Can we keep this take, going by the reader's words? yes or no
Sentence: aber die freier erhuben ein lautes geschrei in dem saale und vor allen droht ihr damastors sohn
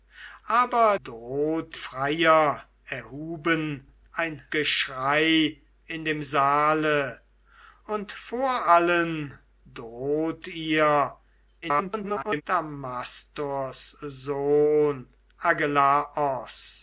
no